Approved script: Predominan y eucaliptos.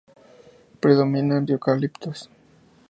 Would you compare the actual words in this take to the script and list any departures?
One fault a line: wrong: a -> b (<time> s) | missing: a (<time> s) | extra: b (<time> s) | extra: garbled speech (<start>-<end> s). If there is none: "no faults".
no faults